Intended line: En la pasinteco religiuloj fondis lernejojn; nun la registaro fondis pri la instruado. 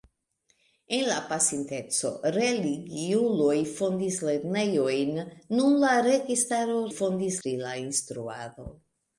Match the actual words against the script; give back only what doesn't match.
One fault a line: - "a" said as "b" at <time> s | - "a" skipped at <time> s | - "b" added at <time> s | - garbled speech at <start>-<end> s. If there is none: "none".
none